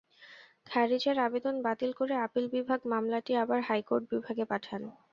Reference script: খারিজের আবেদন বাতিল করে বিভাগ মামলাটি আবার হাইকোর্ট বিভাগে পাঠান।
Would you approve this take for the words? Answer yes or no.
no